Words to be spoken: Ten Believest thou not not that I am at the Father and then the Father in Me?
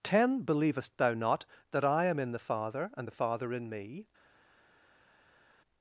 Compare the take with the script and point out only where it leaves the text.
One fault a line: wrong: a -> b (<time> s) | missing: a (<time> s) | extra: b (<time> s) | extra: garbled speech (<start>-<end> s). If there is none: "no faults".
missing: not (1.4 s)
wrong: at -> in (2.2 s)
missing: then (3.1 s)